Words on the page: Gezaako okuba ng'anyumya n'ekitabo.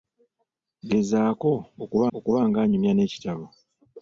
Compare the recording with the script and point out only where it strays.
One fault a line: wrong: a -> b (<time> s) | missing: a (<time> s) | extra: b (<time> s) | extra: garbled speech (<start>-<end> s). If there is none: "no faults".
extra: okuba (2.2 s)